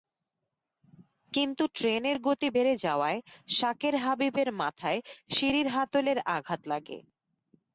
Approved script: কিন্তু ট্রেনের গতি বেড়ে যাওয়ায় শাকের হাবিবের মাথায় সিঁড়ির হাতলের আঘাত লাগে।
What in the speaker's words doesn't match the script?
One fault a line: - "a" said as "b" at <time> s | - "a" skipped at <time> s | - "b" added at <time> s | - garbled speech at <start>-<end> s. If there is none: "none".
none